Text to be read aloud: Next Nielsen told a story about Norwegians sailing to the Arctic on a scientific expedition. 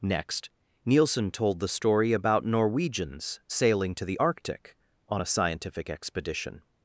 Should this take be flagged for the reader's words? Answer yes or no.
yes